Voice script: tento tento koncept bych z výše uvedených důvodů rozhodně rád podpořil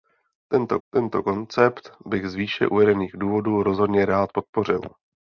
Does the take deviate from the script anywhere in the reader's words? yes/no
no